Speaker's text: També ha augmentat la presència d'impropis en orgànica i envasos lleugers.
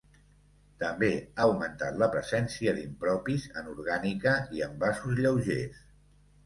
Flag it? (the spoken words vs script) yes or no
no